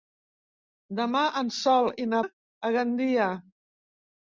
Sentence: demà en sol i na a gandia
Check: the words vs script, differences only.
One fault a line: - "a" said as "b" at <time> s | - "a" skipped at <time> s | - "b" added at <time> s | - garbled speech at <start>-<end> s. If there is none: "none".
none